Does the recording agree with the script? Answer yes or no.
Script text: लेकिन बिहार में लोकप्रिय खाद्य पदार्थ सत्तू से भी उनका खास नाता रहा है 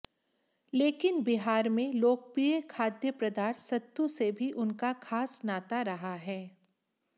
yes